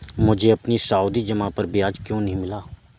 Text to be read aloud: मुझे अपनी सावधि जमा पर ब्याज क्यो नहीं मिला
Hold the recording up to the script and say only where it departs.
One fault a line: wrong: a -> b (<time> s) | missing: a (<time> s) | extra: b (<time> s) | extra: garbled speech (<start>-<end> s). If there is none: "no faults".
no faults